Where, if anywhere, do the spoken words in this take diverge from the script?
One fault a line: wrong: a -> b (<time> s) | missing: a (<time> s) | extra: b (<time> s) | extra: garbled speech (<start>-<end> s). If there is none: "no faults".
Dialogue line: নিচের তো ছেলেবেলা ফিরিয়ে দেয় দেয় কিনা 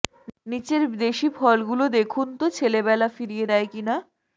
extra: দেশি ফলগুলো দেখুন (1.0 s)
missing: দেয় (3.7 s)